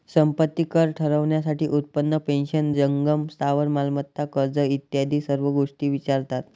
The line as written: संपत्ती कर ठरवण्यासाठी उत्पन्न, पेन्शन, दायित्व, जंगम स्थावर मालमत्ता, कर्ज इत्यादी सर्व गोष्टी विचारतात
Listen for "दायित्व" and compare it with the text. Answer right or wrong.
wrong